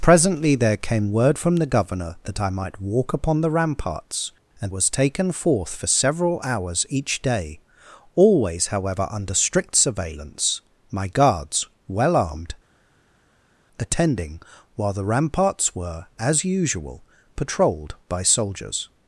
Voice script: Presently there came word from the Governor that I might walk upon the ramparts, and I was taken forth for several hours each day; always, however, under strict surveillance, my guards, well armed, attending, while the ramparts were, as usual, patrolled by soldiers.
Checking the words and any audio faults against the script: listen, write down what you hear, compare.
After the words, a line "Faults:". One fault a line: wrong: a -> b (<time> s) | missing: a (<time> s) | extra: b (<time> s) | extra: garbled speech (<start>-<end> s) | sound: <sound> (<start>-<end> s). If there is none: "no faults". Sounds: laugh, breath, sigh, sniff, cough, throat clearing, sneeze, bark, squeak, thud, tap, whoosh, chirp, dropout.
Presently there came word from the Governor that I might walk upon the ramparts, and was taken forth for several hours each day; always, however, under strict surveillance, my guards, well armed, attending, while the ramparts were, as usual, patrolled by soldiers.
Faults:
missing: I (4.7 s)